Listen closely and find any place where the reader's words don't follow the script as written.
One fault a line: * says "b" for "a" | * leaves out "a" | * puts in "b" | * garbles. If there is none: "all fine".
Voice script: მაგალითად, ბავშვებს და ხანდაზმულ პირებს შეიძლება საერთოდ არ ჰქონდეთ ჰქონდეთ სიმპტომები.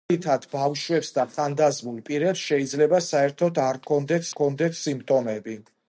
all fine